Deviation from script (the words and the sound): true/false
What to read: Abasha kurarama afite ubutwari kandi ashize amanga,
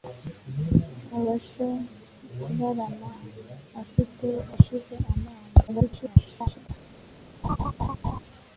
true